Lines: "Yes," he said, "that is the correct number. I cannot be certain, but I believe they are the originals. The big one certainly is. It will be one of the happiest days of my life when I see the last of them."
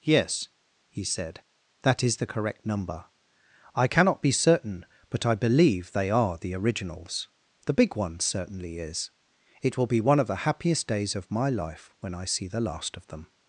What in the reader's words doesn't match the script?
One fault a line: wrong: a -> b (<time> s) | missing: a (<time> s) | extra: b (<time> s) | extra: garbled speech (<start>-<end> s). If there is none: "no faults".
no faults